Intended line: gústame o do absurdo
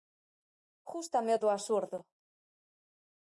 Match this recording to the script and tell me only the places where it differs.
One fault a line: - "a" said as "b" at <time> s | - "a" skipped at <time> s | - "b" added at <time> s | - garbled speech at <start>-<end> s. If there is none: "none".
none